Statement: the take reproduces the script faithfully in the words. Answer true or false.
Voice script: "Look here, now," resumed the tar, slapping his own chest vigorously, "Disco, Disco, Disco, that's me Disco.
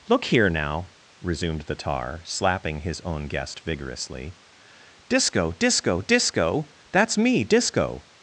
false